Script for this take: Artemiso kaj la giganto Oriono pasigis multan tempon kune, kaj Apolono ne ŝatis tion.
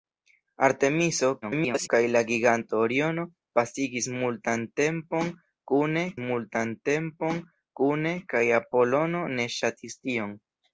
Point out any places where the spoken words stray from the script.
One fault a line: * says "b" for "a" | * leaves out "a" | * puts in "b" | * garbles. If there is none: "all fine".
* garbles
* puts in "multan tempon kune"